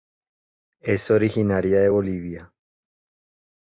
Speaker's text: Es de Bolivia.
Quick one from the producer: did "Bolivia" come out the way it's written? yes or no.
yes